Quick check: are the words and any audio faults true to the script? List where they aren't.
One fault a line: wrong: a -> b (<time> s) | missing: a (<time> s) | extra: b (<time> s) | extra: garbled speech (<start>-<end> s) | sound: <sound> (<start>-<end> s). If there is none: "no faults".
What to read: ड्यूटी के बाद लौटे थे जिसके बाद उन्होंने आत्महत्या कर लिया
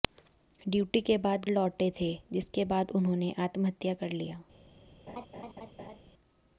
sound: laugh (5.1-6.0 s)